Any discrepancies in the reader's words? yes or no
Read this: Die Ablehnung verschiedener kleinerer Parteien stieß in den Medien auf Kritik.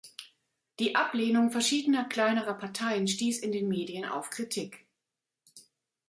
no